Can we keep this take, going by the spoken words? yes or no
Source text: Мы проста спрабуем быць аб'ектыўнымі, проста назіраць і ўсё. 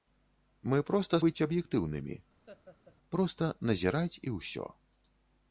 no